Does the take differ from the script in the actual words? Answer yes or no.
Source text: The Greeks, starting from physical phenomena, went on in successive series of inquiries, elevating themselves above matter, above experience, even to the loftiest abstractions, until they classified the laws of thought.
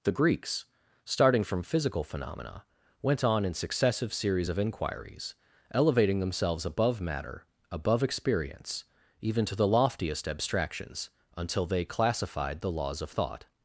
no